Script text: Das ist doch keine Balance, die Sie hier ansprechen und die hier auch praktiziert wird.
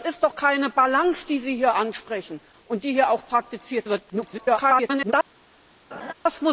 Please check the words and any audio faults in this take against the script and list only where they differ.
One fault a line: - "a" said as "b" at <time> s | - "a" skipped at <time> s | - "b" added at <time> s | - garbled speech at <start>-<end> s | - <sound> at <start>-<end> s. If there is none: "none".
- garbled speech at 4.1-5.1 s
- laugh at 5.9-6.1 s